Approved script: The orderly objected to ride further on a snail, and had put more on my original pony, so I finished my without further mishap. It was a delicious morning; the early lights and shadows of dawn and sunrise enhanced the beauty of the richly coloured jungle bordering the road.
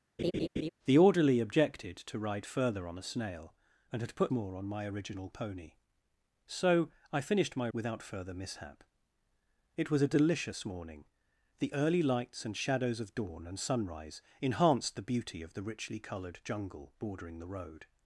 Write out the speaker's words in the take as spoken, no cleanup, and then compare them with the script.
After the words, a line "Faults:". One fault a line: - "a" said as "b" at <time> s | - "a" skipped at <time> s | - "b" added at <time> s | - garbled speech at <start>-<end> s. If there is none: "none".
The orderly objected to ride further on a snail, and had put more on my original pony, so I finished my without further mishap. It was a delicious morning; the early lights and shadows of dawn and sunrise enhanced the beauty of the richly coloured jungle bordering the road.
Faults:
none